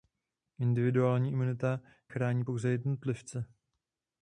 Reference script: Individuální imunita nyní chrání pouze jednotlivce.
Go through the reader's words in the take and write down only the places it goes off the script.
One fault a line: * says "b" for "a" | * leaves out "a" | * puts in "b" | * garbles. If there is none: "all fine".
* leaves out "nyní"